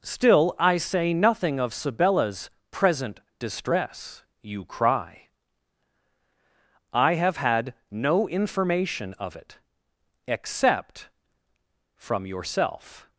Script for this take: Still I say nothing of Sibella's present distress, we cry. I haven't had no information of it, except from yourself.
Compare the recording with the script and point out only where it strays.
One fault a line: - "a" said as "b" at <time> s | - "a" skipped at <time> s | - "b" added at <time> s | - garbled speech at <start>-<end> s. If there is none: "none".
- "we" said as "you" at 4.4 s
- "haven't" said as "have" at 7.2 s